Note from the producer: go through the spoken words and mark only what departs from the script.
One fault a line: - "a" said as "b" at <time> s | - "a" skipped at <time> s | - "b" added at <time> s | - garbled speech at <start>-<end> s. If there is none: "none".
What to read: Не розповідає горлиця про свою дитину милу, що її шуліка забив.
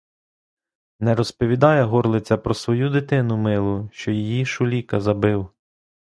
none